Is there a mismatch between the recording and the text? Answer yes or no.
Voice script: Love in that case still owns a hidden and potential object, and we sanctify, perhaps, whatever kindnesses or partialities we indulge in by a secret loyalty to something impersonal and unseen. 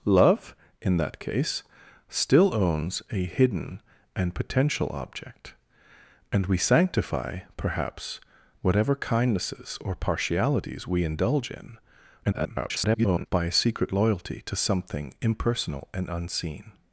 yes